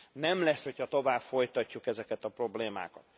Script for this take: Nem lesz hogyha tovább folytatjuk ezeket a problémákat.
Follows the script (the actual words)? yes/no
yes